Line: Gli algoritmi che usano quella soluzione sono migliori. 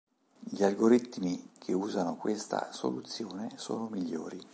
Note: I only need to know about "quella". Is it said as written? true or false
false